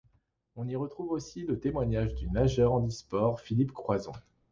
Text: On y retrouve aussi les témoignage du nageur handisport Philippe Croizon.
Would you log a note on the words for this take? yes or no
yes